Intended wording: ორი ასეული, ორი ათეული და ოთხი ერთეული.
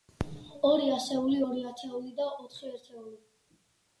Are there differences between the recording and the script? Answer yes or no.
no